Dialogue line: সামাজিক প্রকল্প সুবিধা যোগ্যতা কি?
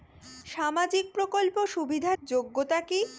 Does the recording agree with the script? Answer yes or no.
yes